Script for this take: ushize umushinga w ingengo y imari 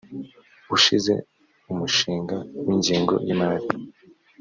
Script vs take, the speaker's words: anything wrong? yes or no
no